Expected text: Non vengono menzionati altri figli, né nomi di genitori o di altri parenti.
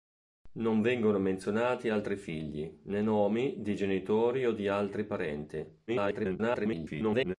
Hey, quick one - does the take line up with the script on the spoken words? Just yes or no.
no